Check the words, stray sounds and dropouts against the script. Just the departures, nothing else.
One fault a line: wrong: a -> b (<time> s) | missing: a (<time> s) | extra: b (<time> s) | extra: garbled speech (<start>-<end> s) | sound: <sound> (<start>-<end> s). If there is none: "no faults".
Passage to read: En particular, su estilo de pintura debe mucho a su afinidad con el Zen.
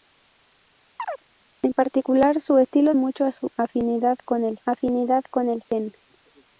sound: chirp (1.0-1.2 s)
wrong: de pintura debe mucho a su -> mucho a su afinidad con el (2.9 s)